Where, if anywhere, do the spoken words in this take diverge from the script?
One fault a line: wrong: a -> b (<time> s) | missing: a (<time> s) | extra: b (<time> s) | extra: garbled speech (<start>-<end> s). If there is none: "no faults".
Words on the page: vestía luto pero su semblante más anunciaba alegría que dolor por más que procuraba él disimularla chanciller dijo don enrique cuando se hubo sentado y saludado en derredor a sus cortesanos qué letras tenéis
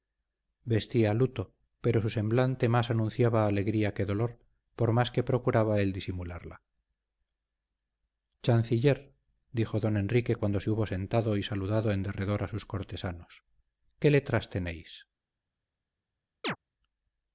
no faults